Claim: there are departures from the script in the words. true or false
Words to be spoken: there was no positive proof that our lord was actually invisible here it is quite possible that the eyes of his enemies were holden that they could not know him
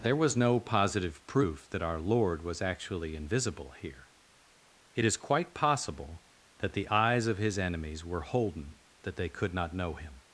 false